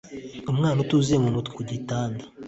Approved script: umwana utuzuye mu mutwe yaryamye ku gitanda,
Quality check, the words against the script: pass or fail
fail